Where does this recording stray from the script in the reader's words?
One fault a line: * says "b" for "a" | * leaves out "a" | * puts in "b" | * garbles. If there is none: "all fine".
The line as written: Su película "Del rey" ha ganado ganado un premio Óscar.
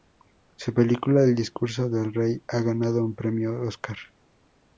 * puts in "El discurso"
* leaves out "ganado"